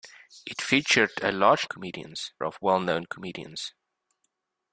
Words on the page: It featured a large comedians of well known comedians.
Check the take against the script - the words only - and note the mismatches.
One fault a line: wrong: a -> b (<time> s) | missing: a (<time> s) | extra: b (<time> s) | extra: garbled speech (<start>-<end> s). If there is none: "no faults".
no faults